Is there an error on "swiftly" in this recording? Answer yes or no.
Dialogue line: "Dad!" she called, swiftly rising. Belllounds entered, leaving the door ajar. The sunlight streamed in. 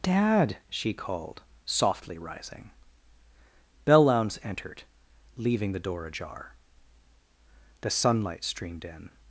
yes